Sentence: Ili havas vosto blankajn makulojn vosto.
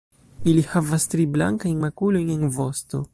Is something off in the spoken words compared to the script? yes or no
yes